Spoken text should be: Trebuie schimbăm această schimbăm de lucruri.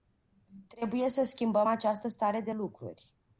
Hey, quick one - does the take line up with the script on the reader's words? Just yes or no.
no